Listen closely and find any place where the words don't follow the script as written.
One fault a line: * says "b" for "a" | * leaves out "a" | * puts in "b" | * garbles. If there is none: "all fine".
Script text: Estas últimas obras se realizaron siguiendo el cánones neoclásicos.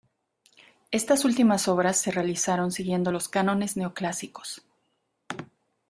* says "los" for "el"